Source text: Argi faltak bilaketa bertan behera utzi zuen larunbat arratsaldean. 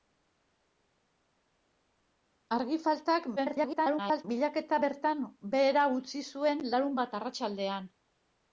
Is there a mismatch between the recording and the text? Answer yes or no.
yes